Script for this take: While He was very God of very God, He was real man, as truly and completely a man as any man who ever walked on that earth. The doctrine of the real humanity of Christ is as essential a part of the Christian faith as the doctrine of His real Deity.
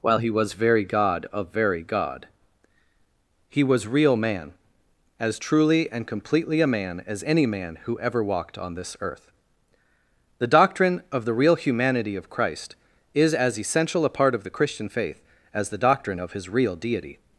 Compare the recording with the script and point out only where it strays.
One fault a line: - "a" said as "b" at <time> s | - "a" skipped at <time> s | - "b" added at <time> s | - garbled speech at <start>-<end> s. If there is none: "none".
- "that" said as "this" at 8.7 s